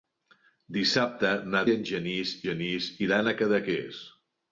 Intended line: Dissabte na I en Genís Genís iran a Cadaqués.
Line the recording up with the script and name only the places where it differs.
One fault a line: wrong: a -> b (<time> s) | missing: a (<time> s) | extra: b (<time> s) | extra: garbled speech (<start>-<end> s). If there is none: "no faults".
no faults